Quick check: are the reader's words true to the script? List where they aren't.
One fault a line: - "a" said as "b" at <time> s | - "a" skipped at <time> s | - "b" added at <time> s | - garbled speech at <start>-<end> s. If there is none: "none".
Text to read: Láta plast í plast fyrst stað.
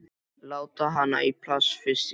- "plast" said as "hana" at 0.9 s
- "í" added at 1.9 s